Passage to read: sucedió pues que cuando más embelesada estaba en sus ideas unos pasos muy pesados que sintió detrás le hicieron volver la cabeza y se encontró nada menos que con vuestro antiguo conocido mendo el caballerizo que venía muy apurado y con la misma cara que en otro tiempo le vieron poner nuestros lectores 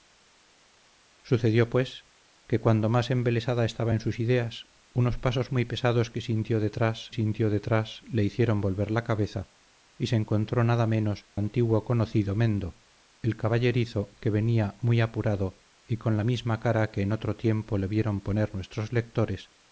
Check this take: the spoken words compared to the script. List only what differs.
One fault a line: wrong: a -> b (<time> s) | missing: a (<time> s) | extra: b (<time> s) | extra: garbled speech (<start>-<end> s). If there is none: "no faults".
extra: sintió detrás (7.1 s)
missing: que con vuestro (11.3 s)